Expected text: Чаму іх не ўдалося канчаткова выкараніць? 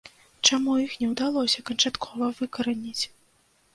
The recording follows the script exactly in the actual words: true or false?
true